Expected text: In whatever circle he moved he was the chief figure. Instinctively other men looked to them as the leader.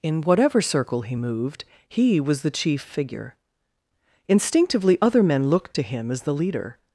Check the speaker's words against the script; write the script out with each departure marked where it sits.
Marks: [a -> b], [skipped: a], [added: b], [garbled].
In whatever circle he moved he was the chief figure. Instinctively other men looked to [them -> him] as the leader.